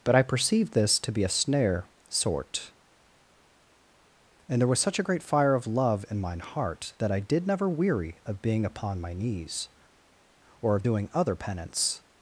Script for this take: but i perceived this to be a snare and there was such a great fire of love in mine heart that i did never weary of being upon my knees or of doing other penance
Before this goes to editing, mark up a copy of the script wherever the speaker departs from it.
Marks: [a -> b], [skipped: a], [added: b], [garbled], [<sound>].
but i perceived this to be a snare [added: sort] and there was such a great fire of love in mine heart that i did never weary of being upon my knees or of doing other penance